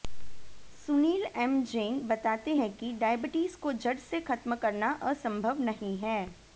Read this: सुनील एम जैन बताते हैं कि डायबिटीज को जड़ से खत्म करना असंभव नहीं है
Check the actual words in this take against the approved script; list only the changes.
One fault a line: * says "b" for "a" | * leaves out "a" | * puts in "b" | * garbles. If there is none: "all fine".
all fine